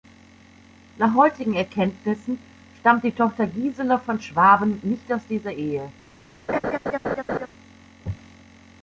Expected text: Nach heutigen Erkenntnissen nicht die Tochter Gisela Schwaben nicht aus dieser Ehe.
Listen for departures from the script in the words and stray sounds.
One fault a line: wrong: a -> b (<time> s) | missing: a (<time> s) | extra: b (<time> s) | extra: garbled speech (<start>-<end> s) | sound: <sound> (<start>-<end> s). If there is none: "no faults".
wrong: nicht -> stammt (2.8 s)
extra: von (4.0 s)
sound: laugh (6.5-7.5 s)